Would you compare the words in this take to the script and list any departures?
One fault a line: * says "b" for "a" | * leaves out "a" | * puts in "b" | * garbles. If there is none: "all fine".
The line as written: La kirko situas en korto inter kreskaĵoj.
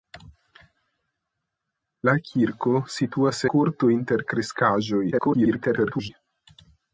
* leaves out "en"
* garbles